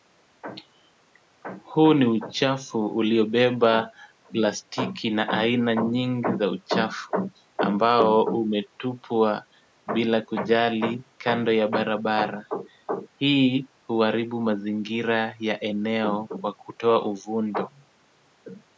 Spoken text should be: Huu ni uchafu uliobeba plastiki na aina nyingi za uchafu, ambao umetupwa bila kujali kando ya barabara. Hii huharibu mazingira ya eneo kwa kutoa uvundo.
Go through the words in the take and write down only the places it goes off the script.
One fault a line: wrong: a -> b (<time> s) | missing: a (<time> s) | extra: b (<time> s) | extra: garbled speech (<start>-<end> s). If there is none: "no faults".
no faults